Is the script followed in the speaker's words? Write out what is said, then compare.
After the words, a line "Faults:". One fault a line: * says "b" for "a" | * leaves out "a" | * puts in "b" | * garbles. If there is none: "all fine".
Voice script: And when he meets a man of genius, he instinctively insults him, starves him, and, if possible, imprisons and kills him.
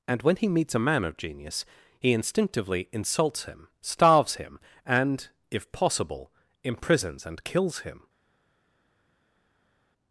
And when he meets a man of genius, he instinctively insults him, starves him, and, if possible, imprisons and kills him.
Faults:
all fine